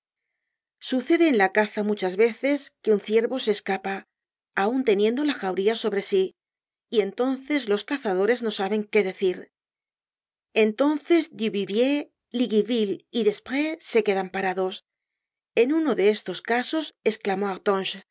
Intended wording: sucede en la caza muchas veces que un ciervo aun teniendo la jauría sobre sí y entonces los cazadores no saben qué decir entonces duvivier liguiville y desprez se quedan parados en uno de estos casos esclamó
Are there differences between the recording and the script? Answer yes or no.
yes